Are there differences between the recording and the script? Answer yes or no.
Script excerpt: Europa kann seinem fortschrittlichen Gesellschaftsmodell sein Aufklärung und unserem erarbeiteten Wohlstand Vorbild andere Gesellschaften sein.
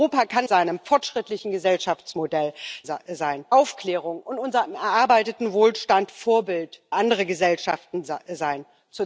no